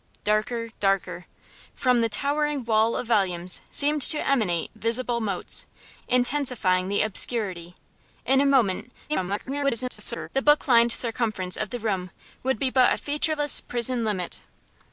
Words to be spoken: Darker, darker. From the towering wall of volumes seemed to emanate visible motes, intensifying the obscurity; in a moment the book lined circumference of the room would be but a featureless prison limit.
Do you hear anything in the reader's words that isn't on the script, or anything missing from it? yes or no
yes